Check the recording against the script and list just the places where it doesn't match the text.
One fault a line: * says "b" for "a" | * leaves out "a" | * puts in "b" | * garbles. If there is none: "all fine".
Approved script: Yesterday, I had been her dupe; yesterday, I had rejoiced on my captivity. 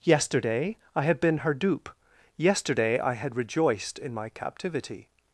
* says "in" for "on"